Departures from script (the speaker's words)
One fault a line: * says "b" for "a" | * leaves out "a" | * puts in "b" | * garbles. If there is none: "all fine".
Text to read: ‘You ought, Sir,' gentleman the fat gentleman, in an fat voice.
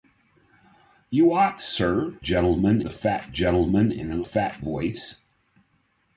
all fine